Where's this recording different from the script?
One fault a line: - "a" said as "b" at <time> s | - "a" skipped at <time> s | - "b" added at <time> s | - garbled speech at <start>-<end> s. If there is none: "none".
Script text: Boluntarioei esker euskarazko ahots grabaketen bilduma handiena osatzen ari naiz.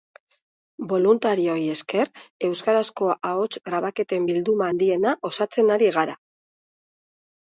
- "naiz" said as "gara" at 6.0 s